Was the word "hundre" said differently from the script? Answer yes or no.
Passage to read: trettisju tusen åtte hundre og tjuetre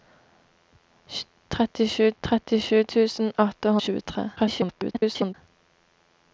yes